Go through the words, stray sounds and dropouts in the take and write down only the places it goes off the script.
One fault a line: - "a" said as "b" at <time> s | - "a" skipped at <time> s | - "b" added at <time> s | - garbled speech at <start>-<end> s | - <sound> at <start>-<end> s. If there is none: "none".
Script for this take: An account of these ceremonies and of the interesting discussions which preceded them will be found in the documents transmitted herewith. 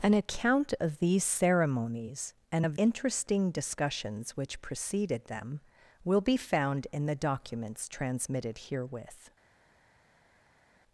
- "the" skipped at 2.8 s